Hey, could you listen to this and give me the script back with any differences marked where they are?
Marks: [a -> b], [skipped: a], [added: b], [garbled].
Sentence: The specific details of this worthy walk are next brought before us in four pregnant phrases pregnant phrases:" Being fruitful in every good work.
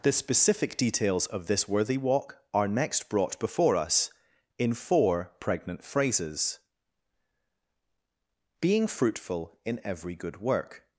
The specific details of this worthy walk are next brought before us in four pregnant phrases [skipped: pregnant phrases:"] Being fruitful in every good work.